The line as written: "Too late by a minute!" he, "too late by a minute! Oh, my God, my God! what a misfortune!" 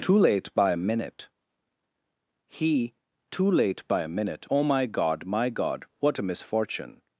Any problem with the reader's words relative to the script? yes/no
no